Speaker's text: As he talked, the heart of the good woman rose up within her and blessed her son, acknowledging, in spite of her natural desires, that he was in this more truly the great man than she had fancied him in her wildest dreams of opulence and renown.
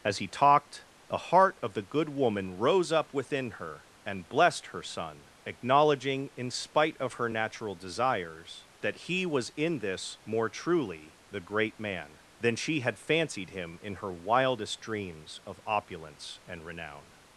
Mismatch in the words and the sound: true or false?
false